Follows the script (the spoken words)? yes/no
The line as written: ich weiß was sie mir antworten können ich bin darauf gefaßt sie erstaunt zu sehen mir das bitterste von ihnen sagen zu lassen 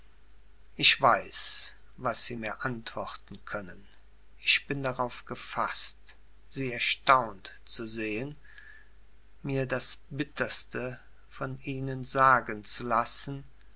yes